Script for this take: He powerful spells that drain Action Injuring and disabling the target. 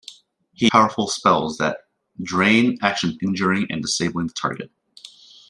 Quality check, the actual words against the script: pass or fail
pass